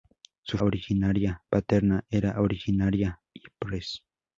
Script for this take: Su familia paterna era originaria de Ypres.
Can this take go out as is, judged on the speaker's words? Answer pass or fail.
fail